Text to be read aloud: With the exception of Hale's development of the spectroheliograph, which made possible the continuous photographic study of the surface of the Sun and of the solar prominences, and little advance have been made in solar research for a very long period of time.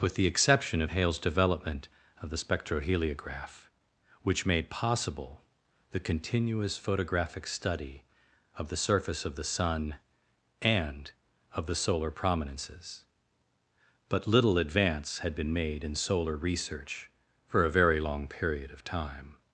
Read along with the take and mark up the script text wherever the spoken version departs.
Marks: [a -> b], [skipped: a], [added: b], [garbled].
With the exception of Hale's development of the spectroheliograph, which made possible the continuous photographic study of the surface of the Sun and of the solar prominences, [and -> but] little advance [have -> had] been made in solar research for a very long period of time.